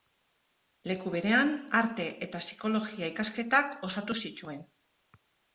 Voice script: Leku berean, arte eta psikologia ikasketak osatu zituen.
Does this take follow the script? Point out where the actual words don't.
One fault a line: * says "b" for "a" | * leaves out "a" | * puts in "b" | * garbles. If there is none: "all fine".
all fine